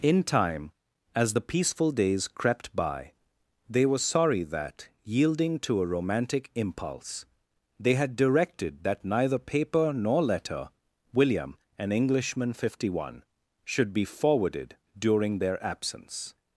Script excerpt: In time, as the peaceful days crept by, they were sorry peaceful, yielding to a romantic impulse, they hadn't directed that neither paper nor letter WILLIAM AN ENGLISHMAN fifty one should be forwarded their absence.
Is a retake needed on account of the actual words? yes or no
yes